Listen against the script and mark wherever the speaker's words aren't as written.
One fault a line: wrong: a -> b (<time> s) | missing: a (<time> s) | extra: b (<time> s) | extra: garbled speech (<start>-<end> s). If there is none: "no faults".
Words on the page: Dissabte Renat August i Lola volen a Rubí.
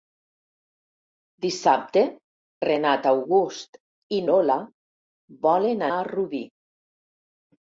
no faults